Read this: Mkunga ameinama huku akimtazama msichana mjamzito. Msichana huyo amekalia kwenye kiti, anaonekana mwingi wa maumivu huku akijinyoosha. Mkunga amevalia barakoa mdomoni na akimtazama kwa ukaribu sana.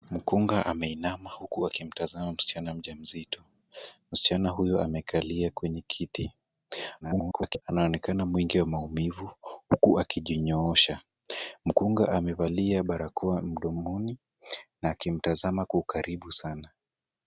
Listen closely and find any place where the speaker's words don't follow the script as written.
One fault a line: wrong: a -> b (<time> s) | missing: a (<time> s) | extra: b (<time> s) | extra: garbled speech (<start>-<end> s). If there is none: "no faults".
extra: garbled speech (7.0-7.6 s)